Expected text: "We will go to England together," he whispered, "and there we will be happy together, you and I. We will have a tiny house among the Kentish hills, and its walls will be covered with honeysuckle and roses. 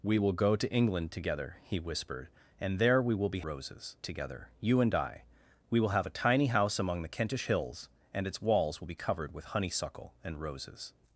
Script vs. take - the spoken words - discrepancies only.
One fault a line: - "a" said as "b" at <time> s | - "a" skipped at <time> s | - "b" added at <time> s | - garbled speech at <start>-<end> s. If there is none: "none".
- "happy" said as "roses" at 3.4 s